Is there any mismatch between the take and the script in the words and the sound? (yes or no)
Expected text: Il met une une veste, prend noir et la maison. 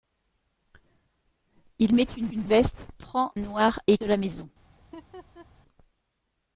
yes